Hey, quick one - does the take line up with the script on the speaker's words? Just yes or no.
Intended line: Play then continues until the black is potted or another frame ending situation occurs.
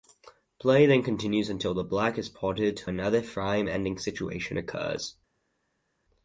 no